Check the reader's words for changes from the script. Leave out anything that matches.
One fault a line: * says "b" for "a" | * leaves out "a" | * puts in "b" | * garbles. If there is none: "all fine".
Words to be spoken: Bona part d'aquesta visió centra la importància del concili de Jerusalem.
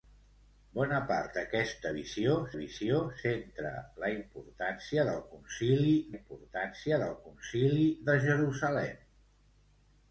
* puts in "visió"
* puts in "importància del concili"